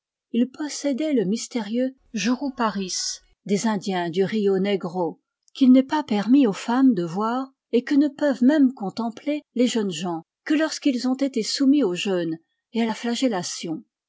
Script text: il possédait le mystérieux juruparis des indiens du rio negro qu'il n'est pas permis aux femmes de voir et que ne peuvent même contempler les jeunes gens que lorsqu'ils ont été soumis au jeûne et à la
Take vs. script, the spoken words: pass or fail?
pass